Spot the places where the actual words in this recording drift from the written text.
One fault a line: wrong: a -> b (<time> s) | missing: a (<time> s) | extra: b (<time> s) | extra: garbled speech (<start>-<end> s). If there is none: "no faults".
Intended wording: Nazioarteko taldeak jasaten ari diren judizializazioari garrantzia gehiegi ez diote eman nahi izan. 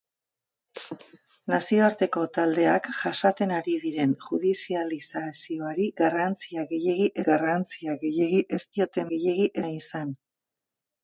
extra: garrantzia gehiegi (7.3 s)
wrong: eman -> gehiegi (9.1 s)